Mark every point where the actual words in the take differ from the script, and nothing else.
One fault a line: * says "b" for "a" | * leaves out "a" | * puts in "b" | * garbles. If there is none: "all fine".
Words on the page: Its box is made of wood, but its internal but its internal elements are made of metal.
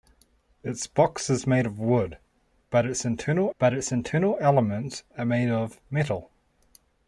all fine